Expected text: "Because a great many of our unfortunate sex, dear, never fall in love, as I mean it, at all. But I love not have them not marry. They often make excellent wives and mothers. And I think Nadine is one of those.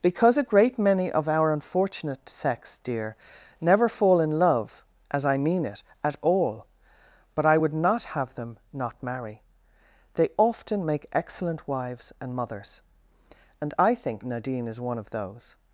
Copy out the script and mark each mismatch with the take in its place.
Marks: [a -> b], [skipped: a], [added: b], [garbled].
"Because a great many of our unfortunate sex, dear, never fall in love, as I mean it, at all. But I [love -> would] not have them not marry. They often make excellent wives and mothers. And I think Nadine is one of those.